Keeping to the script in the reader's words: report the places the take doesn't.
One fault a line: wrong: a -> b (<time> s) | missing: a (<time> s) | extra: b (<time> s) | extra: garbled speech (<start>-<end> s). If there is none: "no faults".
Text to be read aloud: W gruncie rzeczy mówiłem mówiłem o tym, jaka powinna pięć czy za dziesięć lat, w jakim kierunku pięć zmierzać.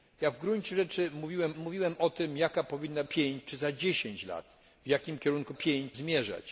no faults